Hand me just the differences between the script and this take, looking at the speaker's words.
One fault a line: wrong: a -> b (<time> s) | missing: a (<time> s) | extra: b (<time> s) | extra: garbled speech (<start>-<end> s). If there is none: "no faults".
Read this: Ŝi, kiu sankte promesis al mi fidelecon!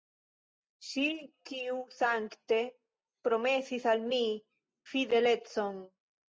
no faults